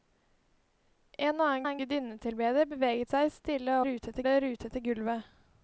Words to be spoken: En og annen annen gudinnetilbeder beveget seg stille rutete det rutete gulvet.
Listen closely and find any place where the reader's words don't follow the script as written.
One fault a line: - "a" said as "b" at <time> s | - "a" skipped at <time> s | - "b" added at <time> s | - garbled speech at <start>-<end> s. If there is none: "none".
none